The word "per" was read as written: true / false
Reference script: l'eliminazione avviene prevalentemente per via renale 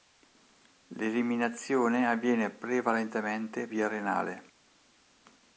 false